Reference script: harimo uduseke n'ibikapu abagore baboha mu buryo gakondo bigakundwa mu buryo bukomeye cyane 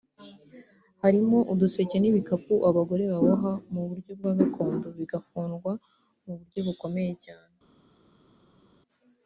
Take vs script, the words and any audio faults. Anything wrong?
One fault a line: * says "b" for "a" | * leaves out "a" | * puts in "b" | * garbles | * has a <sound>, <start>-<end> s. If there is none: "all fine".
* puts in "bwa"